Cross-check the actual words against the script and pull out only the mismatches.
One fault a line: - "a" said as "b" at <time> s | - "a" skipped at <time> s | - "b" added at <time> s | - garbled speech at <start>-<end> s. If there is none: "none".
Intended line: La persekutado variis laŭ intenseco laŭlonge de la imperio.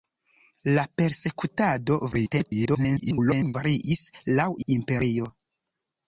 - garbled speech at 2.1-3.5 s
- "intenseco laŭlonge de" skipped at 4.5 s